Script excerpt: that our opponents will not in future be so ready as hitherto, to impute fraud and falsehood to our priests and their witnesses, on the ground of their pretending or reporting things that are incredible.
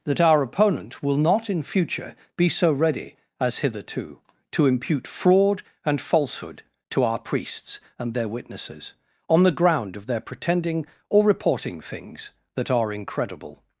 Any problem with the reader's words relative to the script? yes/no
yes